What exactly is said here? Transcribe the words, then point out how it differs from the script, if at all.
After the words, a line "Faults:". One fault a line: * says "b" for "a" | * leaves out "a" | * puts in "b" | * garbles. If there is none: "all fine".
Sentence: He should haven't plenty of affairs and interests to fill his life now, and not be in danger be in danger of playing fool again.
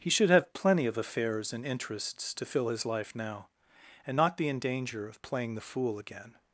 He should have plenty of affairs and interests to fill his life now, and not be in danger of playing the fool again.
Faults:
* says "have" for "haven't"
* leaves out "be in danger"
* puts in "the"